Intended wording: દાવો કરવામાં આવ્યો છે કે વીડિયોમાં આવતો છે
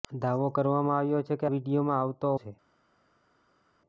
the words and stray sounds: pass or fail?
pass